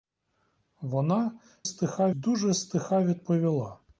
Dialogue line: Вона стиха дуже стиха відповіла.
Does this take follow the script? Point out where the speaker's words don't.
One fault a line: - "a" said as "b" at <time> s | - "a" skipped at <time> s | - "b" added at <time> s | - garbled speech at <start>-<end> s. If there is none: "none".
none